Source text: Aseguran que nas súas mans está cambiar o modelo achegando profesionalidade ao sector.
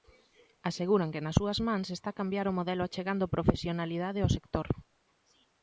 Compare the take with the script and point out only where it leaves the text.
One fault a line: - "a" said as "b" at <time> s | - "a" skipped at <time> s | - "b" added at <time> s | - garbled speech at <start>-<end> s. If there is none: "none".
none